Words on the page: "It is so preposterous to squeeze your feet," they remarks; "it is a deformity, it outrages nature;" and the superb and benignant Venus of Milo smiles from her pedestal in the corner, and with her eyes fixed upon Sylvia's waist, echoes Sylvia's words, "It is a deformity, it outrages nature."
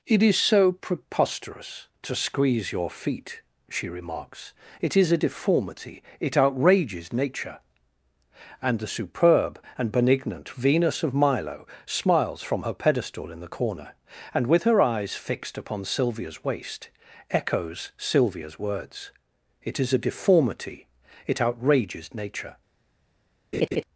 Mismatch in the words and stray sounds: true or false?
true